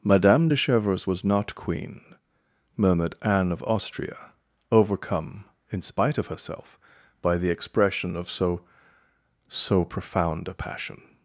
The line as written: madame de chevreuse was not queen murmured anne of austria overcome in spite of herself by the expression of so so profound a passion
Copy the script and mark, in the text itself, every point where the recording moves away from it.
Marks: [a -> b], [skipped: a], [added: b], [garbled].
madame de chevreuse was not queen murmured anne of austria overcome in spite of herself by the expression of so so profound a passion